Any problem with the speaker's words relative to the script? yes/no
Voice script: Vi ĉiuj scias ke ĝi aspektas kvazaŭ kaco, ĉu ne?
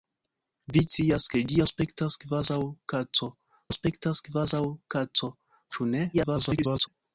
yes